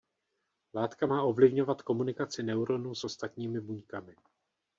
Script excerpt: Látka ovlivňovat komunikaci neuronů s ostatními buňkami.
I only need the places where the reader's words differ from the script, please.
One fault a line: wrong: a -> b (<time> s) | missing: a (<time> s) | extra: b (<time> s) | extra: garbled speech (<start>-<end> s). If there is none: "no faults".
extra: má (1.0 s)